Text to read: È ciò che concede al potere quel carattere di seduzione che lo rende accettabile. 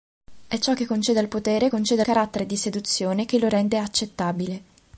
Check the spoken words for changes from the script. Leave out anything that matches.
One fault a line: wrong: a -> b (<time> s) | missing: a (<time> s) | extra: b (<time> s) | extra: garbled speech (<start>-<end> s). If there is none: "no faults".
wrong: quel -> concede (1.7 s)